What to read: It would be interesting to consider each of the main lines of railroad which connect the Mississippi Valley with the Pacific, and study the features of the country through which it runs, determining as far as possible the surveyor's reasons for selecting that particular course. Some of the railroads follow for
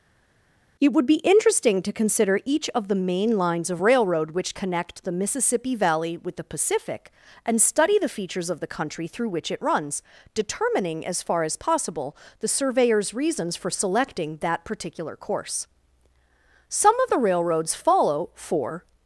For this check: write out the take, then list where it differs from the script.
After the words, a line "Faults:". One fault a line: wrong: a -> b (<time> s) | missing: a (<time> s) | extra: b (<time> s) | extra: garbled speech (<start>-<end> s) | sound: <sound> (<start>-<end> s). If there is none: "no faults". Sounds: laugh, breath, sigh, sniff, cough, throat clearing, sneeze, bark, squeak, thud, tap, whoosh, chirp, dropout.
It would be interesting to consider each of the main lines of railroad which connect the Mississippi Valley with the Pacific, and study the features of the country through which it runs, determining as far as possible the surveyor's reasons for selecting that particular course. Some of the railroads follow for
Faults:
no faults